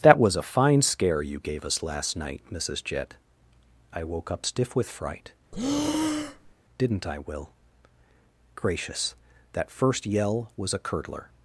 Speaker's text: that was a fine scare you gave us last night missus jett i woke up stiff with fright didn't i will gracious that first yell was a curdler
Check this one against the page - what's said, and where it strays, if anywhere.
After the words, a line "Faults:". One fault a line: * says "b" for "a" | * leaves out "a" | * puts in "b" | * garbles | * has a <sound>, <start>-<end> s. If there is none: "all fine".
that was a fine scare you gave us last night missus jett i woke up stiff with fright didn't i will gracious that first yell was a curdler
Faults:
* has a breath, 5.5-6.5 s